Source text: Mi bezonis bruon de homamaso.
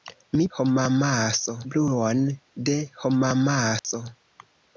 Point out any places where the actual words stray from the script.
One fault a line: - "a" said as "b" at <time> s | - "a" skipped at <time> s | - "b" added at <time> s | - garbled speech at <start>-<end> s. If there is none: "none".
- "bezonis" said as "homamaso" at 0.6 s